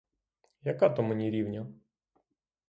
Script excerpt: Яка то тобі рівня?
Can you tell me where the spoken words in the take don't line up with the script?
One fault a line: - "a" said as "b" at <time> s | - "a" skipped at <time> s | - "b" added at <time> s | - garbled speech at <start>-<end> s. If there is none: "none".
- "тобі" said as "мені" at 1.0 s